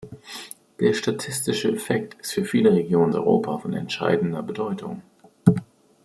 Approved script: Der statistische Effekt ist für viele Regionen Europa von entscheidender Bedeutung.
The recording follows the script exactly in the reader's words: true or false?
true